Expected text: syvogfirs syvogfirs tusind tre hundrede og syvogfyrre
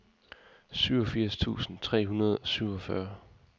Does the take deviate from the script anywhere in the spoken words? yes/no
yes